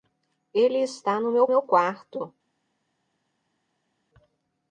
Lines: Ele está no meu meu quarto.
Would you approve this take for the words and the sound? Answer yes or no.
yes